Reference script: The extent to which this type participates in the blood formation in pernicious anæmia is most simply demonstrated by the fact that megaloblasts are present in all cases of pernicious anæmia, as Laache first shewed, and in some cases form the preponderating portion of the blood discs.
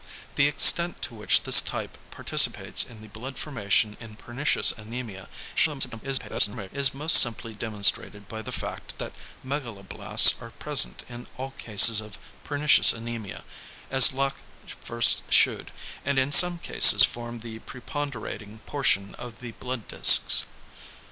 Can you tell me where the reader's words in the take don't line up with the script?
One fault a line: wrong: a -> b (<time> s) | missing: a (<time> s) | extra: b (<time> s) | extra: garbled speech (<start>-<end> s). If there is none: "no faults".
extra: garbled speech (5.6-6.7 s)